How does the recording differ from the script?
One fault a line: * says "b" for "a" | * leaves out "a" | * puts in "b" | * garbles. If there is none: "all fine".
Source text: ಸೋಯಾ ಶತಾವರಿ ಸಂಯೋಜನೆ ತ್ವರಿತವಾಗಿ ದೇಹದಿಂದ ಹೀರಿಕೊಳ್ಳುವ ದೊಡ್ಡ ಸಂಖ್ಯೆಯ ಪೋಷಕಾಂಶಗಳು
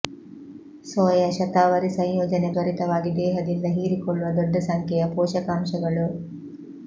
all fine